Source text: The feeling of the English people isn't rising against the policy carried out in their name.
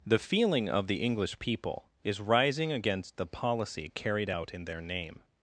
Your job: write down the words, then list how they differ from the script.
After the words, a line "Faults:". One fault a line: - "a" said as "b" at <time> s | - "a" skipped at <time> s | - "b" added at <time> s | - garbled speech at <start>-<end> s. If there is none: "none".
The feeling of the English people is rising against the policy carried out in their name.
Faults:
- "isn't" said as "is" at 2.0 s